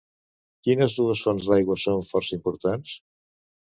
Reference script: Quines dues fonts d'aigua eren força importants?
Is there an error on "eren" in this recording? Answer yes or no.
yes